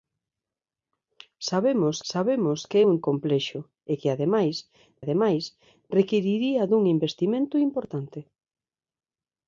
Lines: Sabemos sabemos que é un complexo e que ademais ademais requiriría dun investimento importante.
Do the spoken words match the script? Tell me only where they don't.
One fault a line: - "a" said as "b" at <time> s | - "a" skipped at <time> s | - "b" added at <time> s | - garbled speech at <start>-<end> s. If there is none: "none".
none